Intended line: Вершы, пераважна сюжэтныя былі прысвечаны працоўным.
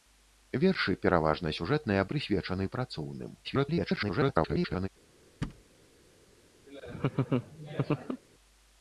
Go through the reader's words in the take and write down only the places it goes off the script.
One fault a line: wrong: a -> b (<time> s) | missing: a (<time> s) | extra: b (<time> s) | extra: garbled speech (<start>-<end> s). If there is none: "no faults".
missing: былі (2.1 s)
extra: garbled speech (3.4-4.9 s)